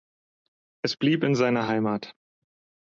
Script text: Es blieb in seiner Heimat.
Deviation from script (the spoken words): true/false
false